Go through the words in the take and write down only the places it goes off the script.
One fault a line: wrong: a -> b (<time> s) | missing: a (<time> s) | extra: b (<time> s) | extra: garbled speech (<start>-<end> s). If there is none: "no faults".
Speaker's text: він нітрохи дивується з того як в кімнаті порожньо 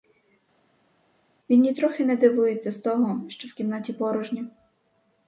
extra: не (2.0 s)
wrong: як -> що (3.3 s)